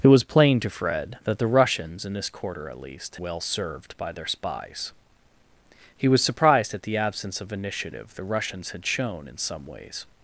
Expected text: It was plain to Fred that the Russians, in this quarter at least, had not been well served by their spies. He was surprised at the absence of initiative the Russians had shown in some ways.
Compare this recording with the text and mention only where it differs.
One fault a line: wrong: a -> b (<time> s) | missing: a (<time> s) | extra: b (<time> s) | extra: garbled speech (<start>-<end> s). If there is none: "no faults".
missing: had not been (3.2 s)